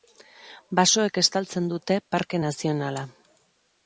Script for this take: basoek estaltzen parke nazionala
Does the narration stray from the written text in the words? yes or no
yes